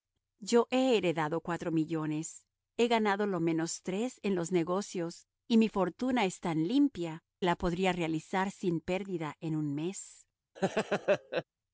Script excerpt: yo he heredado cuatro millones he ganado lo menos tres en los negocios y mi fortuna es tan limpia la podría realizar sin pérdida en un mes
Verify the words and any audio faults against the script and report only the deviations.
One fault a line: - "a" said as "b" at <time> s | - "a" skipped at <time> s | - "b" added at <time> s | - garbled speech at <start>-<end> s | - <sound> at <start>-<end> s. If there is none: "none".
- laugh at 10.6-11.4 s